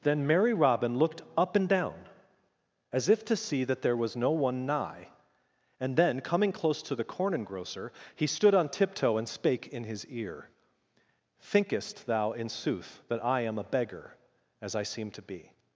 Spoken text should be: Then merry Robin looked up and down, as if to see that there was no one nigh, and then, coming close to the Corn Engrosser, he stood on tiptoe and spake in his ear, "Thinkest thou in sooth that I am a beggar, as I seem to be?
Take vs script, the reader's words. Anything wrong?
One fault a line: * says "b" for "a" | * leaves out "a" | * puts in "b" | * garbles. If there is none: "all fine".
all fine